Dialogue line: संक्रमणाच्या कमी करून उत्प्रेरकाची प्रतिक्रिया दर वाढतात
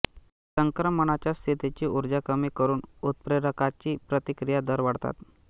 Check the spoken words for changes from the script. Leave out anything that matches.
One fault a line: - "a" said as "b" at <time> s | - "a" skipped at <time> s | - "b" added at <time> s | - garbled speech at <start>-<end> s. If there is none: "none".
- "स्थितीची ऊर्जा" added at 1.3 s